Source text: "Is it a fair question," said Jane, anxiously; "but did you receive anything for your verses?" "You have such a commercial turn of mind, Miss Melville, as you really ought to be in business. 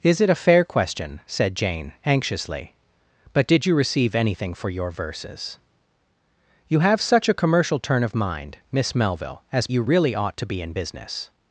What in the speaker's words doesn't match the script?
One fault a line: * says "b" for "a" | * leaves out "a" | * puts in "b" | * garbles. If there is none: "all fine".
all fine